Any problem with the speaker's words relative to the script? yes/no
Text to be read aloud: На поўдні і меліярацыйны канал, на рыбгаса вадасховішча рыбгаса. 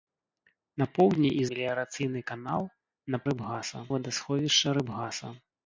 no